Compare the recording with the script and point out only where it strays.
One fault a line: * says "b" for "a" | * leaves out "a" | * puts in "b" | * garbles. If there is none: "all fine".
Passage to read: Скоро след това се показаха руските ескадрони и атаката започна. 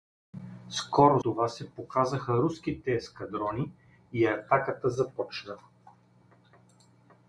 * leaves out "след"